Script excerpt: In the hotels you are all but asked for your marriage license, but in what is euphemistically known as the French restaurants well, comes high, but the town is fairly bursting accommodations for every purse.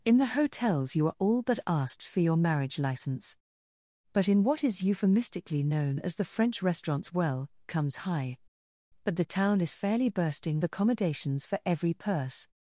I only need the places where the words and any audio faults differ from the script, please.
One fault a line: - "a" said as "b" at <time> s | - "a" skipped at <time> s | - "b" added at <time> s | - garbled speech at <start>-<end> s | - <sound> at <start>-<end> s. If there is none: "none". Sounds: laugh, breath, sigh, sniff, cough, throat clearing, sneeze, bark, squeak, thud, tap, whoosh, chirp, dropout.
none